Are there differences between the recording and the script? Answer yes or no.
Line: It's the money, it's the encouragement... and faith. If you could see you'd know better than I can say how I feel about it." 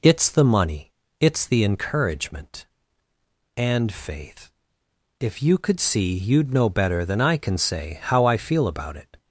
no